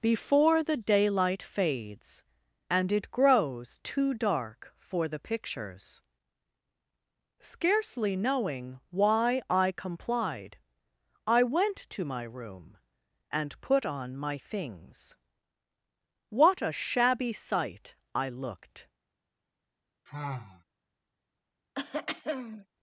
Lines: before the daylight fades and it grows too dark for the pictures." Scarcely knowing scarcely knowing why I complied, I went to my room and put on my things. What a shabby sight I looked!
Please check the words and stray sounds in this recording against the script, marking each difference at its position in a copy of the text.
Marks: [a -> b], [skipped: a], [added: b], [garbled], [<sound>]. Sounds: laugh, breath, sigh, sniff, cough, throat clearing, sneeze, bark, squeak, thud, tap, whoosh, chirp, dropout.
before the daylight fades and it grows too dark for the pictures." Scarcely knowing [skipped: scarcely knowing] why I complied, I went to my room and put on my things. What a shabby sight I looked! [sigh] [throat clearing]